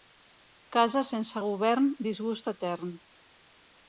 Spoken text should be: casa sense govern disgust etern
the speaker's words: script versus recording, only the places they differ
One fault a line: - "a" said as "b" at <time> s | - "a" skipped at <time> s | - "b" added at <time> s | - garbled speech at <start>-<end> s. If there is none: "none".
none